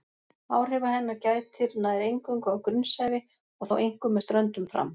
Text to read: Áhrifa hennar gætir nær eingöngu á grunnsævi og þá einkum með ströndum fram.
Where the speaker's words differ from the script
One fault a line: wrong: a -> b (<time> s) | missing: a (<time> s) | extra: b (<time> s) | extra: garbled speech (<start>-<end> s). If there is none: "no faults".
no faults